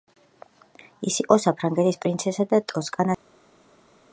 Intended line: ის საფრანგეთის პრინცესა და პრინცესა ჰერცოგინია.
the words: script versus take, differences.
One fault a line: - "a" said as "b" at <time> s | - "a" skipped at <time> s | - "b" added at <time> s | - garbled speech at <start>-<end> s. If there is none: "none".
- "იყო" added at 1.2 s
- "პრინცესა" said as "ტოსკანას" at 2.7 s